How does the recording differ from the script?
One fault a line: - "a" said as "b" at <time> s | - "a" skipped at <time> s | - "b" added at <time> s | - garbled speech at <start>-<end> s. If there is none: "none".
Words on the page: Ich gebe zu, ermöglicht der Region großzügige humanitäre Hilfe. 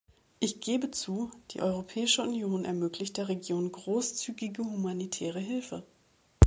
- "die Europäische Union" added at 1.5 s